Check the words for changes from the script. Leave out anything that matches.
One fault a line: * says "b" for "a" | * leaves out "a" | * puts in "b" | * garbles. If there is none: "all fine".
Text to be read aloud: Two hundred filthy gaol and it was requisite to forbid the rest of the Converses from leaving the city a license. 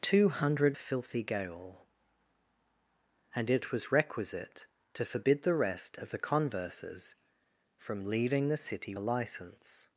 all fine